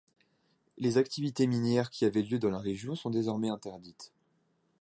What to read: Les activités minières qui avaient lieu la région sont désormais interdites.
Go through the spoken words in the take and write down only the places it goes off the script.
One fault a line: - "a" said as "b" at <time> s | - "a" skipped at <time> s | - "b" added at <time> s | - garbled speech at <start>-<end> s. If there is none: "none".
- "dans" added at 2.4 s